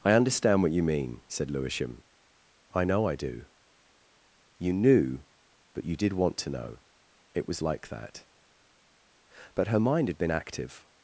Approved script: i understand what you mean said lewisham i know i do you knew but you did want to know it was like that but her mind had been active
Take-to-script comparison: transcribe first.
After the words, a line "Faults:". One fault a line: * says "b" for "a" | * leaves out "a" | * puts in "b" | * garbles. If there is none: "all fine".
i understand what you mean said lewisham i know i do you knew but you did want to know it was like that but her mind had been active
Faults:
all fine